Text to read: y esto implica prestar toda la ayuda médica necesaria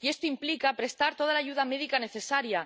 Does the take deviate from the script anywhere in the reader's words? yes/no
no